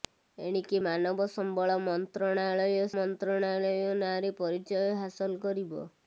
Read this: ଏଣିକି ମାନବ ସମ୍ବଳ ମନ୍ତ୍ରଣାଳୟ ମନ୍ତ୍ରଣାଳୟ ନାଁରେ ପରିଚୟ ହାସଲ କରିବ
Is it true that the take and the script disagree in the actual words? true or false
false